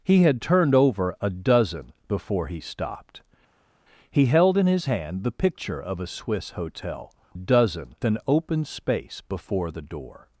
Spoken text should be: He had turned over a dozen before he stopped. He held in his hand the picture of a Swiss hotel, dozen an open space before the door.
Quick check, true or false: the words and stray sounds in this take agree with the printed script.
true